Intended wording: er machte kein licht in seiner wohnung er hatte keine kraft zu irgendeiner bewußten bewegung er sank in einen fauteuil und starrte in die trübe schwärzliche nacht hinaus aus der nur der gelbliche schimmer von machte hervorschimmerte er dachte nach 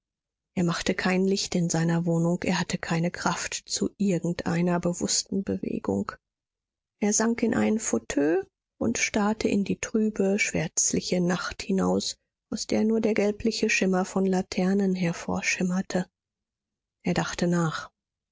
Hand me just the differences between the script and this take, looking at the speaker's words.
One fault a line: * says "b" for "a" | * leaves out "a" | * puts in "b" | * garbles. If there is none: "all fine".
* says "laternen" for "machte"